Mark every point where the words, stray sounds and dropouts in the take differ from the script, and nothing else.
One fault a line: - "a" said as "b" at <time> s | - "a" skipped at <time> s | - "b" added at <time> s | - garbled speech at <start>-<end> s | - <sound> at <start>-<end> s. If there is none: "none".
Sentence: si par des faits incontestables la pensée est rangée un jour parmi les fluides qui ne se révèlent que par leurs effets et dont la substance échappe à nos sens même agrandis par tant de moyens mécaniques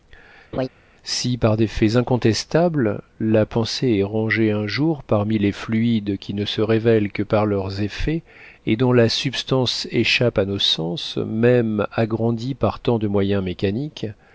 - laugh at 0.5-0.7 s